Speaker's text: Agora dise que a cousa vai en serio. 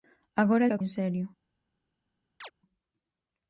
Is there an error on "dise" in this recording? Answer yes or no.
yes